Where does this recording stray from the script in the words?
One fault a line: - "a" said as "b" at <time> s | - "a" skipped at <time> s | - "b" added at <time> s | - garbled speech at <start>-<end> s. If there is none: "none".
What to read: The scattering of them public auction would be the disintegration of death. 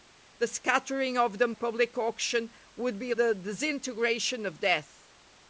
none